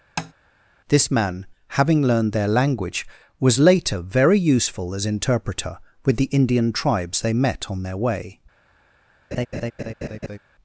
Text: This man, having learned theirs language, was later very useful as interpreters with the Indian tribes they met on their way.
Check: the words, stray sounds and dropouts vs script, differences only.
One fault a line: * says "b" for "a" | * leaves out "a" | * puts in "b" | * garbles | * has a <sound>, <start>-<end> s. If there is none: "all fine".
* has a tap, 0.2-0.3 s
* says "their" for "theirs"
* says "interpreter" for "interpreters"
* has a laugh, 9.3-10.4 s